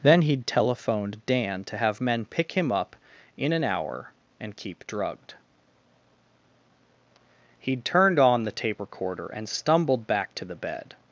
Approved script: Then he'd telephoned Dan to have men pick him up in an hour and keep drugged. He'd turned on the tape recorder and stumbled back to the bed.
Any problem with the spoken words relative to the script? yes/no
no